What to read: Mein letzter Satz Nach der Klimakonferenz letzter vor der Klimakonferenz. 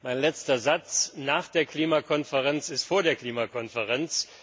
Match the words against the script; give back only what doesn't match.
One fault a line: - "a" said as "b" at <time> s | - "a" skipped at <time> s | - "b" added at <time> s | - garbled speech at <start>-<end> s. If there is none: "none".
- "letzter" said as "ist" at 2.7 s